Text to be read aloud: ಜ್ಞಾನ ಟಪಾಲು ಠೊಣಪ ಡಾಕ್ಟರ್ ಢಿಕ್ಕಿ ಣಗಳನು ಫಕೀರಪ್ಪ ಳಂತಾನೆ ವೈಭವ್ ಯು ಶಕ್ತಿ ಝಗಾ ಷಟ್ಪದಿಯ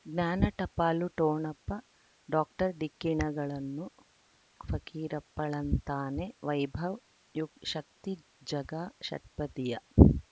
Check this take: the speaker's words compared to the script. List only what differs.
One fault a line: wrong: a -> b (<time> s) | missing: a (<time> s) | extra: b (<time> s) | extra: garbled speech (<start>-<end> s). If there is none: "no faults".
no faults